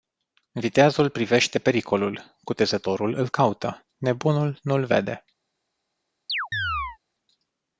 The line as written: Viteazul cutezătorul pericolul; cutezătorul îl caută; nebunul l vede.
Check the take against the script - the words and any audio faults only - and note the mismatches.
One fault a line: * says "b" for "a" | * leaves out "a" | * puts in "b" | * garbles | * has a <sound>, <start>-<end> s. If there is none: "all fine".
* says "privește" for "cutezătorul"
* puts in "nu"
* has a chirp, 6.3-7.0 s